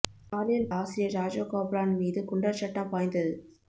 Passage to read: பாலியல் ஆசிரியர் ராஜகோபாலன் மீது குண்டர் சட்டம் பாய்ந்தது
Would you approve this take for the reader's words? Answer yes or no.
yes